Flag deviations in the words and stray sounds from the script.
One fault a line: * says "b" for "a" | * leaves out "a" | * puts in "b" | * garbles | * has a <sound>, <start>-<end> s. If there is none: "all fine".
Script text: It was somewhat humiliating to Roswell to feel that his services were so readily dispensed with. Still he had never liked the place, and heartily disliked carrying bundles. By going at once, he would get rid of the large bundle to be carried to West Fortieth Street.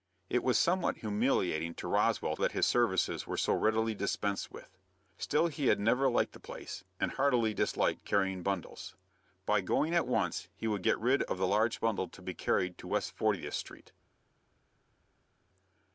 * leaves out "to feel"